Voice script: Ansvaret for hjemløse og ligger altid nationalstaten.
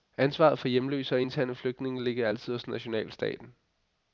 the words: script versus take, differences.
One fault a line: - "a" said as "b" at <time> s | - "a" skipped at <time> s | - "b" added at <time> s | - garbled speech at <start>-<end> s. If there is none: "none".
- "interne flygtninge" added at 1.2 s
- "hos" added at 2.5 s